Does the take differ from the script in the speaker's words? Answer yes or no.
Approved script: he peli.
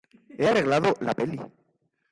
yes